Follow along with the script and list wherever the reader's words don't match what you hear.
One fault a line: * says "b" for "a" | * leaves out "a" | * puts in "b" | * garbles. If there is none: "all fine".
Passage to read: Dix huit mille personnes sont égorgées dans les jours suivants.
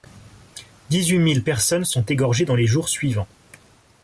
all fine